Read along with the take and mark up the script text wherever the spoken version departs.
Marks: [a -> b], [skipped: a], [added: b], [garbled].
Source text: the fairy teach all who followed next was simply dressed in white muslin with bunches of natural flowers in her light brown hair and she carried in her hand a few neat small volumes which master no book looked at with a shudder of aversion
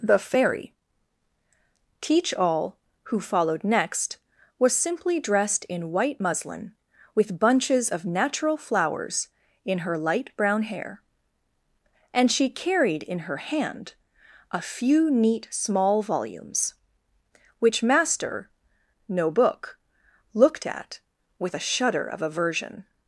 the fairy teach all who followed next was simply dressed in white muslin with bunches of natural flowers in her light brown hair and she carried in her hand a few neat small volumes which master no book looked at with a shudder of aversion